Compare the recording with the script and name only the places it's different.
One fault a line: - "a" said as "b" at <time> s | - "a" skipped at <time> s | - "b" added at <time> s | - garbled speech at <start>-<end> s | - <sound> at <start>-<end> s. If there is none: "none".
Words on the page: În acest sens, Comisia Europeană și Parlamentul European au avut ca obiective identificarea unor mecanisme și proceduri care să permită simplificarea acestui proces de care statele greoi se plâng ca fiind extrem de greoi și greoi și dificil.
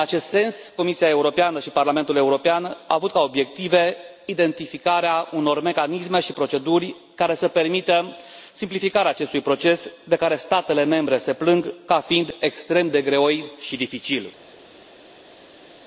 - "greoi" said as "membre" at 10.8 s
- "greoi și" skipped at 13.8 s